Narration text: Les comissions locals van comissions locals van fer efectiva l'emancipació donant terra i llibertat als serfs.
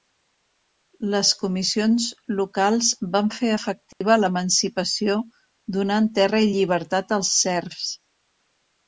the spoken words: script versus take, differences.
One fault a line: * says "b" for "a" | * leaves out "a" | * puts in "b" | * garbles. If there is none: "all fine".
* leaves out "comissions locals van"